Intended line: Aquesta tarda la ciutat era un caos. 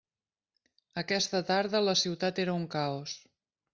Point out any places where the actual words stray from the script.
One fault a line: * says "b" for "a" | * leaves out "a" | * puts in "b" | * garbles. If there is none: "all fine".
all fine